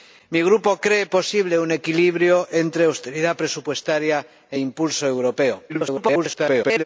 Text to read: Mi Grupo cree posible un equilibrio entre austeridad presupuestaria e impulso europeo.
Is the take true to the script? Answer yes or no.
no